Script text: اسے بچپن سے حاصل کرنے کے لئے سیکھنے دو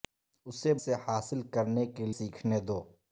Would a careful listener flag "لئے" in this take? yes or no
yes